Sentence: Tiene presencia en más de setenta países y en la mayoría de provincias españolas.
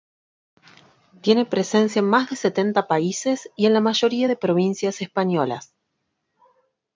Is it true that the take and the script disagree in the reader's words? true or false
false